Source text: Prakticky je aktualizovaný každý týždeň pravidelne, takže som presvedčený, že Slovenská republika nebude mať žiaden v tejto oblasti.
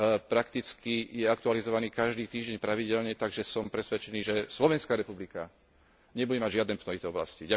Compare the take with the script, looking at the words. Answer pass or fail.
pass